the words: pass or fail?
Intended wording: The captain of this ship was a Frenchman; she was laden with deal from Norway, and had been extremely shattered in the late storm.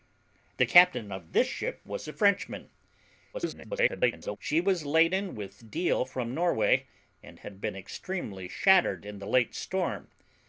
fail